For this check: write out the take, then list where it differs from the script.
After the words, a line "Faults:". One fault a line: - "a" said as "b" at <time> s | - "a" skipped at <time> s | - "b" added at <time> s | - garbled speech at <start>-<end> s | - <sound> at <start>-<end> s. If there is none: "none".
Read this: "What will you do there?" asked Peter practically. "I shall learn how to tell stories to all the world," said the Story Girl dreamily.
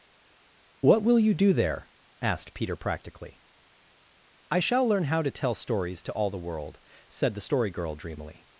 "What will you do there?" asked Peter practically. "I shall learn how to tell stories to all the world," said the Story Girl dreamily.
Faults:
none